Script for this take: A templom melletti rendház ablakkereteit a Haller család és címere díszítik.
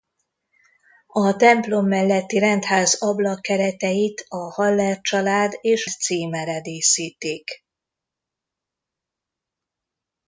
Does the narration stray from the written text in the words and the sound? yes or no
no